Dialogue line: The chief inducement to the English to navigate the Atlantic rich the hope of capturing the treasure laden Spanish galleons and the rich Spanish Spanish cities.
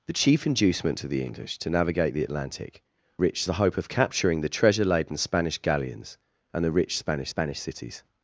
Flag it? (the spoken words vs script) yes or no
no